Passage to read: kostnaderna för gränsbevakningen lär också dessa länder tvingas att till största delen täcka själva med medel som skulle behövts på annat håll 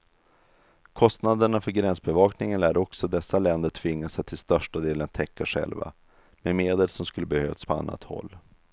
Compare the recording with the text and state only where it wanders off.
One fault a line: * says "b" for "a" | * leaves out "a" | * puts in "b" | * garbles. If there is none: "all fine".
all fine